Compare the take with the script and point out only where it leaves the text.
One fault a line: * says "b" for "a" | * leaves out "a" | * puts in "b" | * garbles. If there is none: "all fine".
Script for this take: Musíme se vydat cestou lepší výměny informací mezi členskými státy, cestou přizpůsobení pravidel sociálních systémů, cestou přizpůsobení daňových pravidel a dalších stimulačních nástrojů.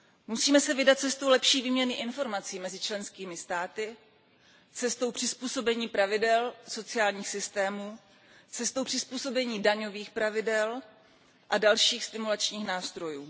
all fine